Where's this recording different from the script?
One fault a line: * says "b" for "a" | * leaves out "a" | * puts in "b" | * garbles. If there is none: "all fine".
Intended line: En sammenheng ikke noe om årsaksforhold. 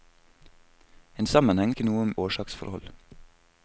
all fine